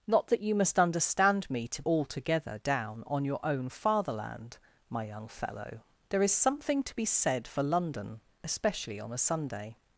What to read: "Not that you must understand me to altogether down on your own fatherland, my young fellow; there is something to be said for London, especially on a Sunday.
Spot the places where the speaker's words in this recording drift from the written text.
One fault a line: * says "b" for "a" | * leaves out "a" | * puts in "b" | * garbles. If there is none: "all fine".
all fine